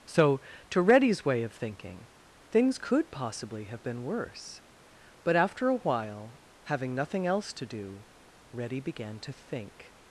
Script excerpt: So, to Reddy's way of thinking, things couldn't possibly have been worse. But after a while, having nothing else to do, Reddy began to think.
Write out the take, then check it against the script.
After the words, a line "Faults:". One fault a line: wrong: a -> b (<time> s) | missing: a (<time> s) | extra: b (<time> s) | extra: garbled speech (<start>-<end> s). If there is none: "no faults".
So, to Reddy's way of thinking, things could possibly have been worse. But after a while, having nothing else to do, Reddy began to think.
Faults:
wrong: couldn't -> could (2.8 s)